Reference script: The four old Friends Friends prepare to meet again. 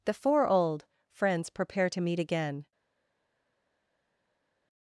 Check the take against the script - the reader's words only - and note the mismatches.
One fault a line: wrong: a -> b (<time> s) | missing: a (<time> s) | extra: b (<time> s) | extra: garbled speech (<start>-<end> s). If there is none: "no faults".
missing: Friends (1.5 s)